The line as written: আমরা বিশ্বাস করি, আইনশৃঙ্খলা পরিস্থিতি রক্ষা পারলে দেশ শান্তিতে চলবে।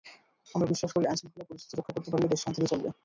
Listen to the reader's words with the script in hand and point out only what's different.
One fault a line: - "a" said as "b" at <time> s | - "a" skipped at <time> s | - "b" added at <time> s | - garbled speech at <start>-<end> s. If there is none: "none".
- "করতে" added at 1.9 s